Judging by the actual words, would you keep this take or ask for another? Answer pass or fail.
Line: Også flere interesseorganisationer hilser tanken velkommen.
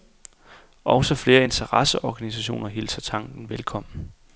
pass